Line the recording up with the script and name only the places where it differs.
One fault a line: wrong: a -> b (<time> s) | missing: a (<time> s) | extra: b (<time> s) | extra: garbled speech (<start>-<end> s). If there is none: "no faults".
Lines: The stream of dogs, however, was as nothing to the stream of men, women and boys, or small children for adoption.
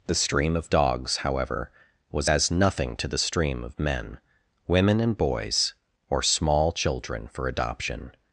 no faults